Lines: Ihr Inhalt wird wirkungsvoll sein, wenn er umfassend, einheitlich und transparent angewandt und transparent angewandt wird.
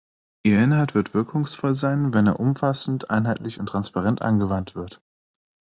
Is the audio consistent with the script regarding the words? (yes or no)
no